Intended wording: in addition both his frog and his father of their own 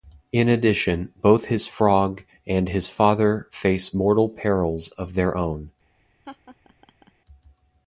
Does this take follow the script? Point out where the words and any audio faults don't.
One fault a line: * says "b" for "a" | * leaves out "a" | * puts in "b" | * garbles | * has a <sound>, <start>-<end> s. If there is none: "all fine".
* puts in "face mortal perils"
* has a laugh, 6.2-7.1 s